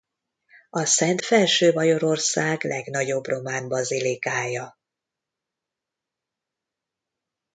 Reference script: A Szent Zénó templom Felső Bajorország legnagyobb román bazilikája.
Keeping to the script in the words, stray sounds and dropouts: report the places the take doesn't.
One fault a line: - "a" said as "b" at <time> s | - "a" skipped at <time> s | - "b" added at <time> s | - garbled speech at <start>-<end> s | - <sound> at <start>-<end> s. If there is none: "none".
- "Zénó templom" skipped at 1.2 s